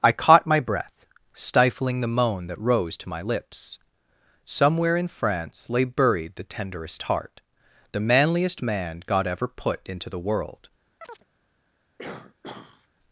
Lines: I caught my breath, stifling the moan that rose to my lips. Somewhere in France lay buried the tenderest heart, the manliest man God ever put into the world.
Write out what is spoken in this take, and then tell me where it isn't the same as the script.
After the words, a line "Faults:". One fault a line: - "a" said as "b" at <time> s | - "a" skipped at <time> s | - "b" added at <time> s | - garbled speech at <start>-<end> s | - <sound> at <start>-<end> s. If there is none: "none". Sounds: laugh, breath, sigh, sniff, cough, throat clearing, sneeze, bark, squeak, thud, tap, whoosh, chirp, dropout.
I caught my breath, stifling the moan that rose to my lips. Somewhere in France lay buried the tenderest heart, the manliest man God ever put into the world.
Faults:
- chirp at 11.0-11.2 s
- throat clearing at 12.0-12.9 s